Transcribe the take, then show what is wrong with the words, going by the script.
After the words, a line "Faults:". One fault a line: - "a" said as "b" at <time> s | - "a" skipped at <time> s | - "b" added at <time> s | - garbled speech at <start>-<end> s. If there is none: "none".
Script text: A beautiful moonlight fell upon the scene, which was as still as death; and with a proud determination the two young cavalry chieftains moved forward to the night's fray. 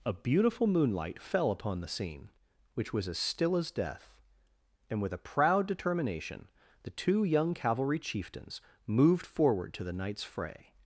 A beautiful moonlight fell upon the scene, which was as still as death; and with a proud determination the two young cavalry chieftains moved forward to the night's fray.
Faults:
none